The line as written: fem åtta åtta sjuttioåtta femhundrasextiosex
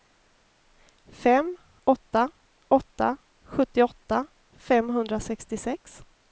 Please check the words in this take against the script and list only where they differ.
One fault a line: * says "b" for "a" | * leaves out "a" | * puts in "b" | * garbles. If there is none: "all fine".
all fine